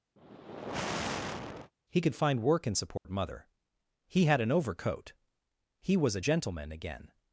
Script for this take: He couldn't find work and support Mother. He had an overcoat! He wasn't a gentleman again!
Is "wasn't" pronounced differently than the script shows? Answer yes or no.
yes